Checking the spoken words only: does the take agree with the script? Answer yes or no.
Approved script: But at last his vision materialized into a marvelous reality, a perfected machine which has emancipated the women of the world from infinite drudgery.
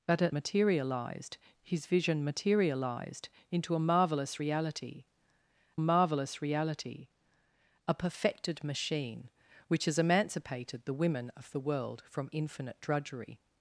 no